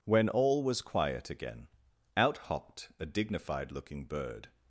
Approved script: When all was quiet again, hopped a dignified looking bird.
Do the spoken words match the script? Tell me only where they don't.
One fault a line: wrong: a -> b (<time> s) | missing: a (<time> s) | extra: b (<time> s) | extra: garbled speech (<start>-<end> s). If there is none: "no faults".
extra: out (2.2 s)